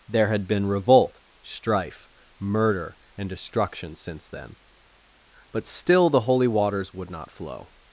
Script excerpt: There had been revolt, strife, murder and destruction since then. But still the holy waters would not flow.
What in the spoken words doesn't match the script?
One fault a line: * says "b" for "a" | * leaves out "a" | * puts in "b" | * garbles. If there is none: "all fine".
all fine